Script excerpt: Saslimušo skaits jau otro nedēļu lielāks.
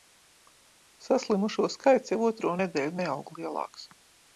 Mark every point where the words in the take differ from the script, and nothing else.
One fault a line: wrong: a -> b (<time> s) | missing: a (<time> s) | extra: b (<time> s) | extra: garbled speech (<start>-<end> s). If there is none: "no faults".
extra: neaug (3.0 s)